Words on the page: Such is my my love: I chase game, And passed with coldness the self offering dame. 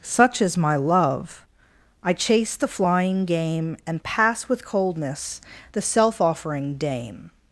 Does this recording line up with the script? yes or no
no